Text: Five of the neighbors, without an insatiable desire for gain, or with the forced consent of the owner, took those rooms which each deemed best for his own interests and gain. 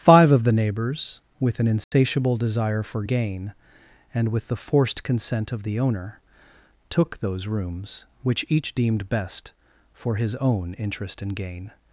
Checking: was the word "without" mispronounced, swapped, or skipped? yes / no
yes